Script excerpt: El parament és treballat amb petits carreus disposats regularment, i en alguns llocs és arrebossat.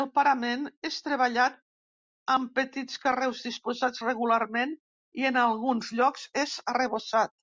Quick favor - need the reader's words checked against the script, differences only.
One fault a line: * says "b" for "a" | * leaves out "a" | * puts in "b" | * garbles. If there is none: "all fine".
all fine